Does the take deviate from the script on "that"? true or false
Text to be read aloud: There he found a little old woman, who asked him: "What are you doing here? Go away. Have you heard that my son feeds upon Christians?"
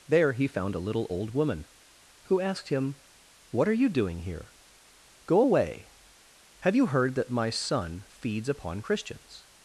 false